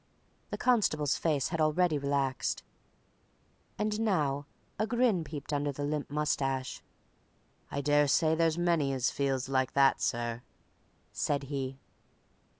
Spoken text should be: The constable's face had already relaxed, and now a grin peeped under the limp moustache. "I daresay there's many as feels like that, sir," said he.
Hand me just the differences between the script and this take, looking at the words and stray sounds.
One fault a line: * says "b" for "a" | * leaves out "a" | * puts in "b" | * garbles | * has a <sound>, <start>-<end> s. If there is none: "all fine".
all fine